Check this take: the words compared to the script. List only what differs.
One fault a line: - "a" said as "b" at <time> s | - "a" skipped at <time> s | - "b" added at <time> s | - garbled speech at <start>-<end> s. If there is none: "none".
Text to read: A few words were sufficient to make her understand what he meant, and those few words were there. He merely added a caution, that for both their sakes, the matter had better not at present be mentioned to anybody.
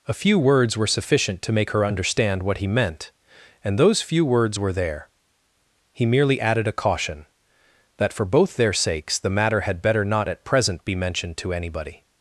none